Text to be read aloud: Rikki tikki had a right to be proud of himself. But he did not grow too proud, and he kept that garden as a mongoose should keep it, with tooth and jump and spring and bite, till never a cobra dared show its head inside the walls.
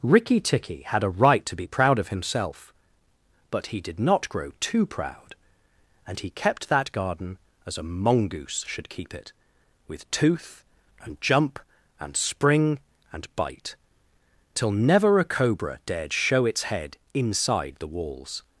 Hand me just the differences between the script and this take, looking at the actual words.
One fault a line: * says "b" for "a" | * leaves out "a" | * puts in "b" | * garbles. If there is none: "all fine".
all fine